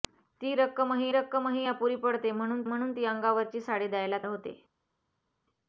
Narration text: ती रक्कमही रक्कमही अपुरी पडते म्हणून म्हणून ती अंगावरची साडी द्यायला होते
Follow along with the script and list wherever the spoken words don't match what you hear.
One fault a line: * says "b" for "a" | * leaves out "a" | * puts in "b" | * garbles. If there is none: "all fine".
all fine